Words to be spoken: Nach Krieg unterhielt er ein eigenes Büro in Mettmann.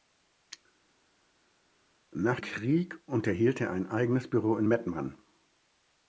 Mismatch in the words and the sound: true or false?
false